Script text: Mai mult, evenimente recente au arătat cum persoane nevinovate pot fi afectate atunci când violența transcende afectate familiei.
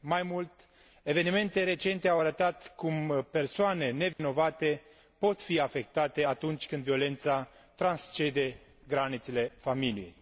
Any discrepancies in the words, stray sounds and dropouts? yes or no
yes